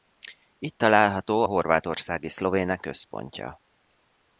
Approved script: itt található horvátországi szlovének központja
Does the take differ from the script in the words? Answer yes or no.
no